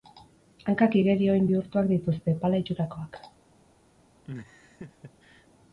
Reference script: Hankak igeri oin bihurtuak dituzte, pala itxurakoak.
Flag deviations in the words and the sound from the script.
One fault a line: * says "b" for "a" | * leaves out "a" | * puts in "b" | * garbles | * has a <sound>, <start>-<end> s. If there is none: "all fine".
* has a laugh, 4.2-5.5 s